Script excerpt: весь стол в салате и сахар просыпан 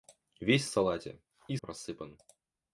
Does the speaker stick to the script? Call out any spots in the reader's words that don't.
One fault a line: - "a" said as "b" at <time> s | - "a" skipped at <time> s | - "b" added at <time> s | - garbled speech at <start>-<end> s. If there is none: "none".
- "стол" skipped at 0.7 s
- "сахар" skipped at 1.6 s